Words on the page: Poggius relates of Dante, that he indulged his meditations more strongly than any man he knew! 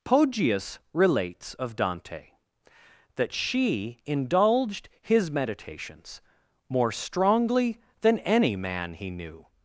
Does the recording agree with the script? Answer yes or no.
no